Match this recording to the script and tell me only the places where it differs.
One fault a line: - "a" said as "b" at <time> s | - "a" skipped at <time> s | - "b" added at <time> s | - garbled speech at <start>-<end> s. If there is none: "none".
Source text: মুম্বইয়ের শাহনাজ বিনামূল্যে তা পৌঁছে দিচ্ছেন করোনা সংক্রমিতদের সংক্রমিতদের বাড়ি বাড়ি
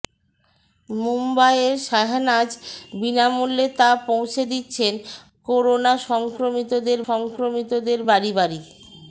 none